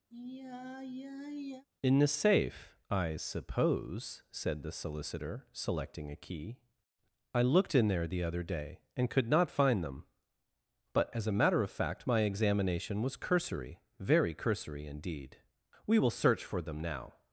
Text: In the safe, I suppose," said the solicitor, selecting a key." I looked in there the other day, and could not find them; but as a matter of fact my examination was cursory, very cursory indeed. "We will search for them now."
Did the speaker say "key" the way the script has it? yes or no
yes